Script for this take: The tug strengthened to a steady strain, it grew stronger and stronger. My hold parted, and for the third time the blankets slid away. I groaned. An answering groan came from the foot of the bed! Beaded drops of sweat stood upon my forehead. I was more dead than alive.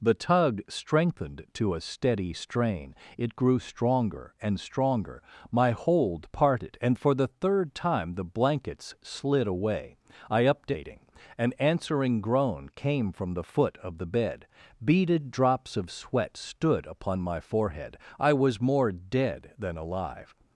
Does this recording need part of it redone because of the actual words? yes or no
yes